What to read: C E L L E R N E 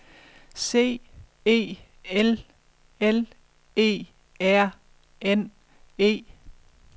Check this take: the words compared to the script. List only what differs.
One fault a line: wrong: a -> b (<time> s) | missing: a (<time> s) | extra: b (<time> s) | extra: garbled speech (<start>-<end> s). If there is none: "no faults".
no faults